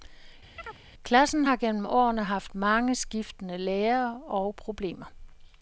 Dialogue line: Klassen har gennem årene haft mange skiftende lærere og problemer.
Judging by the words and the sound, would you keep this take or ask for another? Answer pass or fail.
fail